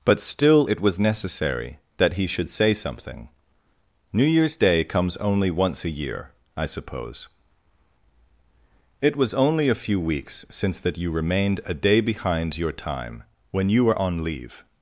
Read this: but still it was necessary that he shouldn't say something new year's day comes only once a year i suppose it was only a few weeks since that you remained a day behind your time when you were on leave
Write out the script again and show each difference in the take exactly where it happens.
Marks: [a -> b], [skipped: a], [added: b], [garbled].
but still it was necessary that he [shouldn't -> should] say something new year's day comes only once a year i suppose it was only a few weeks since that you remained a day behind your time when you were on leave